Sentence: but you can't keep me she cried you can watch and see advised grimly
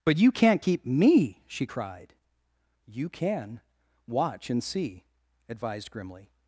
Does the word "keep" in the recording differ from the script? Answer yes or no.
no